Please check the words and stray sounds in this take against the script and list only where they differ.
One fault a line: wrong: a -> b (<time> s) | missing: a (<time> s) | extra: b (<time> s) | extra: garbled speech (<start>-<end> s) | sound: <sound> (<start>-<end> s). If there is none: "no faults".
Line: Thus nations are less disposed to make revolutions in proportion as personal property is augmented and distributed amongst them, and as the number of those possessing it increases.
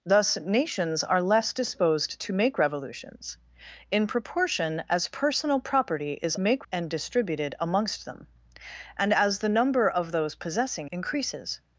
wrong: augmented -> make (6.4 s)
missing: it (10.9 s)